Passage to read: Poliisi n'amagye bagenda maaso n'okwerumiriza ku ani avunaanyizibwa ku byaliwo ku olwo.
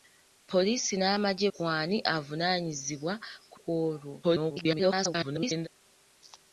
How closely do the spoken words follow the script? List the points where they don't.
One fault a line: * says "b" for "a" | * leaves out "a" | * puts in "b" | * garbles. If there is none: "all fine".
* leaves out "bagenda maaso n'okwerumiriza"
* leaves out "byaliwo"
* garbles